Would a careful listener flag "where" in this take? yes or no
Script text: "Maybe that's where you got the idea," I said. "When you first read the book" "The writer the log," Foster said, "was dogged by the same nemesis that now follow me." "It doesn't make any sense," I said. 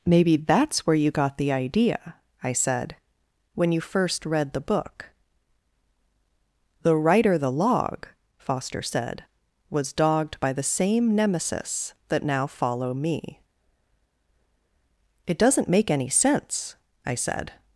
no